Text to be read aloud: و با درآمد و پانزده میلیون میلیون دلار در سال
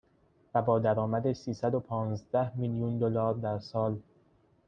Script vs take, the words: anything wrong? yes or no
yes